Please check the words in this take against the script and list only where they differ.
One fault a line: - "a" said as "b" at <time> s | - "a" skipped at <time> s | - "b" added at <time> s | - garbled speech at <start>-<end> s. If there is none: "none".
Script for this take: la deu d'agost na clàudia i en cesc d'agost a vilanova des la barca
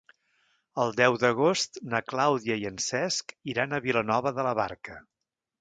- "la" said as "el" at 0.8 s
- "d'agost" said as "iran" at 3.5 s
- "des" said as "de" at 4.4 s